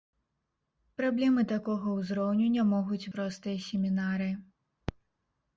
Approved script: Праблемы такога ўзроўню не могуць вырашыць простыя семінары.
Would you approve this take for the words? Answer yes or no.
no